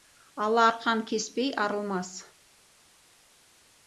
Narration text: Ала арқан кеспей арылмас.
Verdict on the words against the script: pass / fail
pass